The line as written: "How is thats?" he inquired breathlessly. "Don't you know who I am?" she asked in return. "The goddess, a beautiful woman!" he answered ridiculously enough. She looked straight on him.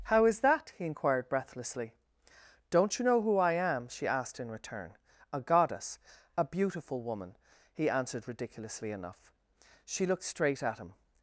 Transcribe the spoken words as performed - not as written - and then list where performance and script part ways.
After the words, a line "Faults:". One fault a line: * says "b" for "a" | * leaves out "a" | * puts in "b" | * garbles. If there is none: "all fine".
"How is that?" he inquired breathlessly. "Don't you know who I am?" she asked in return. "A goddess, a beautiful woman!" he answered ridiculously enough. She looked straight at him.
Faults:
* says "that" for "thats"
* says "A" for "The"
* says "at" for "on"